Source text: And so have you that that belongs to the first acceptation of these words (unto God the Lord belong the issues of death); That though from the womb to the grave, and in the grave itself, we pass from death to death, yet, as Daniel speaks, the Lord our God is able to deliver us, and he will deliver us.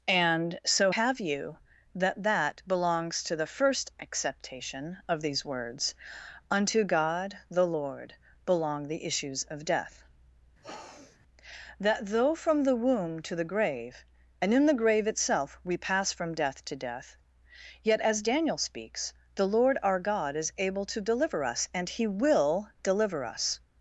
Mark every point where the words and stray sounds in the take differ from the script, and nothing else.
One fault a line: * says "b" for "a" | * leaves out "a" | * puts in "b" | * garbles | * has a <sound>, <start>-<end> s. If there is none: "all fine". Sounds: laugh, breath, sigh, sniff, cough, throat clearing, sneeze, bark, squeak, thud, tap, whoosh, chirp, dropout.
* has a sniff, 10.6-11.2 s